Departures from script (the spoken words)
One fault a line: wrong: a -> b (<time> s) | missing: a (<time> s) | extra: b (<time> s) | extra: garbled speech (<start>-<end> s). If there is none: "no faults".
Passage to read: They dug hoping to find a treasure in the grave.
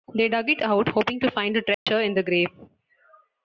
extra: it out (0.5 s)